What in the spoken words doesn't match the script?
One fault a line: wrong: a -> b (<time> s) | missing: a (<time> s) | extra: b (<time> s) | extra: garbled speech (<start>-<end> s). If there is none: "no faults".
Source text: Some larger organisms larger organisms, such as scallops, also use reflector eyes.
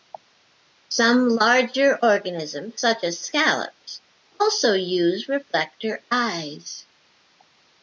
missing: larger organisms (2.8 s)